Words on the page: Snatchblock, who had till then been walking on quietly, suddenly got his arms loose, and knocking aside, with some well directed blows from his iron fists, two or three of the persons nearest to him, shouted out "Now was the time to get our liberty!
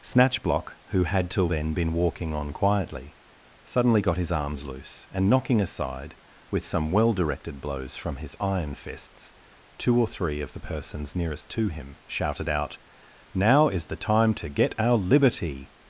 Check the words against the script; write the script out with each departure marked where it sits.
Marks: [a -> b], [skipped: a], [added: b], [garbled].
Snatchblock, who had till then been walking on quietly, suddenly got his arms loose, and knocking aside, with some well directed blows from his iron fists, two or three of the persons nearest to him, shouted out "Now [was -> is] the time to get our liberty!